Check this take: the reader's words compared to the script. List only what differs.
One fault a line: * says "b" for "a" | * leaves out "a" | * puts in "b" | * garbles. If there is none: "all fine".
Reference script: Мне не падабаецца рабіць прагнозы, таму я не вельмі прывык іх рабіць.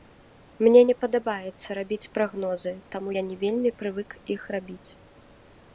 all fine